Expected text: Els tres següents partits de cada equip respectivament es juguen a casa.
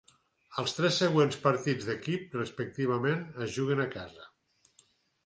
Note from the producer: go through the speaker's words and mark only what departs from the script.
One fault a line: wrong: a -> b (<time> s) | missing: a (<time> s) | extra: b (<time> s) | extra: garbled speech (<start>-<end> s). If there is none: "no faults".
missing: cada (2.0 s)